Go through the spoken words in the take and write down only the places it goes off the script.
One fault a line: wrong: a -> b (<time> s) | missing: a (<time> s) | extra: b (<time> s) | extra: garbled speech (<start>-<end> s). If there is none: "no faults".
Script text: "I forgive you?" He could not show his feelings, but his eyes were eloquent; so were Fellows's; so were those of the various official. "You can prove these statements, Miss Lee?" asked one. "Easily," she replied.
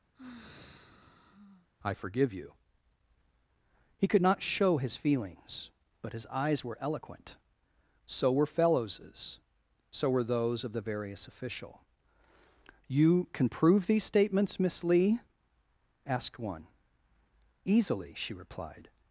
no faults